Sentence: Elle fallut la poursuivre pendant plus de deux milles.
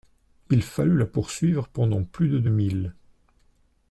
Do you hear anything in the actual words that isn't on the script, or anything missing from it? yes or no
yes